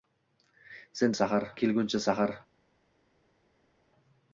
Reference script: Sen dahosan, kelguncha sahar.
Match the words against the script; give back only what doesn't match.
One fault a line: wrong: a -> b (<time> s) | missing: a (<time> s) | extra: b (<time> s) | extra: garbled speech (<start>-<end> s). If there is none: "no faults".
wrong: dahosan -> sahar (1.1 s)